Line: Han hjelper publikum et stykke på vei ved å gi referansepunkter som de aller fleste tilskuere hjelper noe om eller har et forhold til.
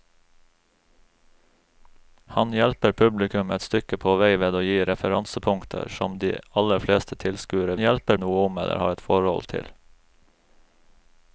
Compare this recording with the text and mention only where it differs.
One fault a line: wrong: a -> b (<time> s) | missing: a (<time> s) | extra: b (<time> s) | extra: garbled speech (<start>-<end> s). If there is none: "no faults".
no faults